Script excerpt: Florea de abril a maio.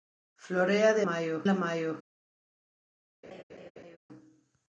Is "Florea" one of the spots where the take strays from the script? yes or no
no